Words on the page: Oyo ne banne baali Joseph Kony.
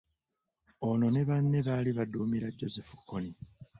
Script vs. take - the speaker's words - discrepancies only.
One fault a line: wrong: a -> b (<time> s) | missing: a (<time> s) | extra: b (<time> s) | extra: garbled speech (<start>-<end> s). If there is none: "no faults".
wrong: Oyo -> Ono (0.9 s)
extra: baduumira (2.0 s)